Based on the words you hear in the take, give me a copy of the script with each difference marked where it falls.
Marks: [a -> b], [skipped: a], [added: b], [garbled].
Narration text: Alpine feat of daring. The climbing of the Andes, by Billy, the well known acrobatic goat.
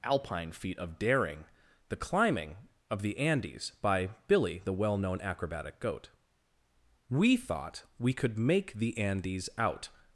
Alpine feat of daring. The climbing of the Andes, by Billy, the well known acrobatic goat. [added: We thought we could make the Andes out]